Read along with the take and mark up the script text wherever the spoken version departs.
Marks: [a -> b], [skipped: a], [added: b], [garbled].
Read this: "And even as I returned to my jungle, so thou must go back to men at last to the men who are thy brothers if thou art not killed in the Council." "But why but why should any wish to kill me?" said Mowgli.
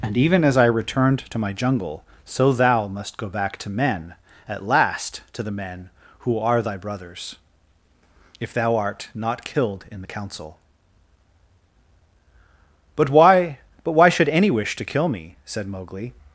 "And even as I returned to my jungle, so thou must go back to men at last to the men who are thy brothers if thou art not killed in the Council." "But why but why should any wish to kill me?" said Mowgli.